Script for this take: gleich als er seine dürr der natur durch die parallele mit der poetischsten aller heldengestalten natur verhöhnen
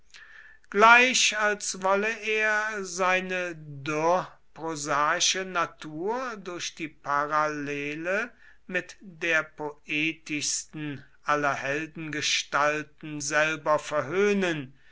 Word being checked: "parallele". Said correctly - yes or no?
yes